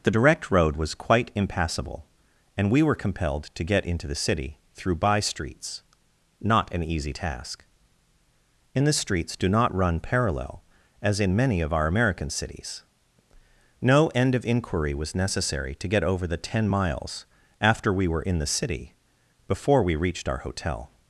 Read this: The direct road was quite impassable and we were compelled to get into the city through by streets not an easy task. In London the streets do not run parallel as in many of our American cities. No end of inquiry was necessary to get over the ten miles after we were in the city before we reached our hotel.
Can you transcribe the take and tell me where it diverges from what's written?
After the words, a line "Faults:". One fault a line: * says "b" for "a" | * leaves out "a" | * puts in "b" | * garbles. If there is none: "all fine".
The direct road was quite impassable and we were compelled to get into the city through by streets not an easy task. In the streets do not run parallel as in many of our American cities. No end of inquiry was necessary to get over the ten miles after we were in the city before we reached our hotel.
Faults:
* leaves out "London"